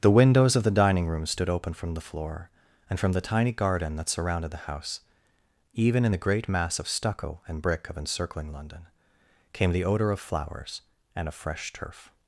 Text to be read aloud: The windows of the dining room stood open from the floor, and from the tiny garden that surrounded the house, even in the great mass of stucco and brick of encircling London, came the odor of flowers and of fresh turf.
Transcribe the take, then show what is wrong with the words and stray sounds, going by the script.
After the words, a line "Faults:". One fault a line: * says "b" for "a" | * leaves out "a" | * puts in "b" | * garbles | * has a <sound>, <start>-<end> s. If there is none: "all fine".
The windows of the dining room stood open from the floor, and from the tiny garden that surrounded the house, even in the great mass of stucco and brick of encircling London, came the odor of flowers and of fresh turf.
Faults:
all fine